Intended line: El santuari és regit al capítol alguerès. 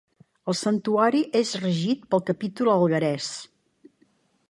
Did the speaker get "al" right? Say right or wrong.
wrong